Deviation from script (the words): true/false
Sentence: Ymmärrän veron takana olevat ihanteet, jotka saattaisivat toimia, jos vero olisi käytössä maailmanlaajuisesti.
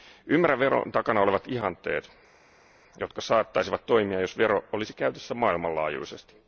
false